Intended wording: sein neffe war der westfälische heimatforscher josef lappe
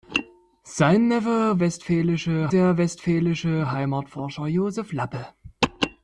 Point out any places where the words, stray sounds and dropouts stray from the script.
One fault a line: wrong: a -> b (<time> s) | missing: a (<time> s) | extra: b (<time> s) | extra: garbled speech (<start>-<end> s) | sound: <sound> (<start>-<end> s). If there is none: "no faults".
wrong: war -> westfälische (1.6 s)